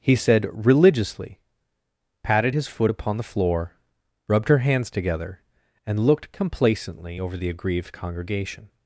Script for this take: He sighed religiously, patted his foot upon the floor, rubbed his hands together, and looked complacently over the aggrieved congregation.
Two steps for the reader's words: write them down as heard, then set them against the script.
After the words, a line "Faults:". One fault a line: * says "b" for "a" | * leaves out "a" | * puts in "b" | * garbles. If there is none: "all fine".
He said religiously, patted his foot upon the floor, rubbed her hands together, and looked complacently over the aggrieved congregation.
Faults:
* says "said" for "sighed"
* says "her" for "his"